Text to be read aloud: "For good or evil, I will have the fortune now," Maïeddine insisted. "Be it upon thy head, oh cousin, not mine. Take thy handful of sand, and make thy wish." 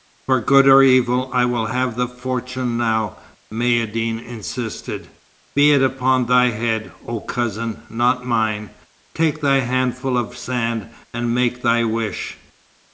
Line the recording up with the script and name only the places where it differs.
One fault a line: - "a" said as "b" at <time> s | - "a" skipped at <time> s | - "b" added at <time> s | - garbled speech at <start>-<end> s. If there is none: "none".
none